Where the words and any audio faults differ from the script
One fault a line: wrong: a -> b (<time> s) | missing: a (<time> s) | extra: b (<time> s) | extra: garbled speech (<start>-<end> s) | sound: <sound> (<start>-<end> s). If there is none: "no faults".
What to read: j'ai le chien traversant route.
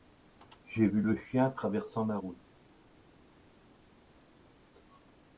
extra: vu (0.8 s)
extra: la (2.1 s)